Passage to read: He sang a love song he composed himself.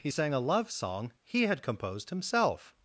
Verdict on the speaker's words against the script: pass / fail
fail